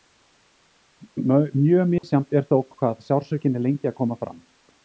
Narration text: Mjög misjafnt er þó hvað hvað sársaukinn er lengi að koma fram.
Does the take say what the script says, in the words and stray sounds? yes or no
no